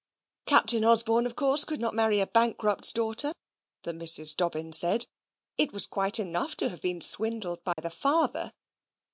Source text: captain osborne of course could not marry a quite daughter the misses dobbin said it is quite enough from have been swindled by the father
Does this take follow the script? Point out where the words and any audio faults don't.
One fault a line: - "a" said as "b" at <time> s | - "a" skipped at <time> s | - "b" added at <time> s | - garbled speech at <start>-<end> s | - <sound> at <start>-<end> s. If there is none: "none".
- "quite" said as "bankrupt's" at 2.3 s
- "is" said as "was" at 5.7 s
- "from" said as "to" at 6.6 s
- dropout at 7.7-7.8 s